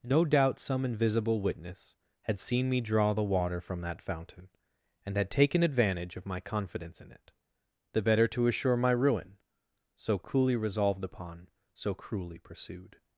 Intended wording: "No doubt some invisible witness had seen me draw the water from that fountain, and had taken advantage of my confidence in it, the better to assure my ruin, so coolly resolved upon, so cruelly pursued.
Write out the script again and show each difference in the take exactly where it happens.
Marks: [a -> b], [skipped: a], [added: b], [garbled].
"No doubt some invisible witness had seen me draw the water from that fountain, and had taken advantage of my confidence in it, the better to assure my ruin, so coolly resolved upon, so cruelly pursued.